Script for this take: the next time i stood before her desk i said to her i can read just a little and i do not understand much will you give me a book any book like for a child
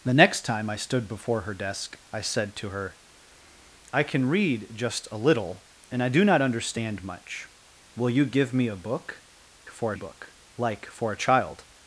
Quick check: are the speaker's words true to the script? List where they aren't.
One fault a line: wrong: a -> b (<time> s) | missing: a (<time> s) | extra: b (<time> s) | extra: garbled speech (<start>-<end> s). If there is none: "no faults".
wrong: any -> for (9.7 s)